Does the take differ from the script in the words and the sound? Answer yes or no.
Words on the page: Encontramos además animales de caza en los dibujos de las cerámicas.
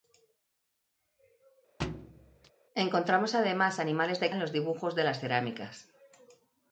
yes